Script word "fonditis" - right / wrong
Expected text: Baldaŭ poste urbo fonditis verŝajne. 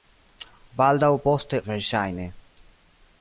wrong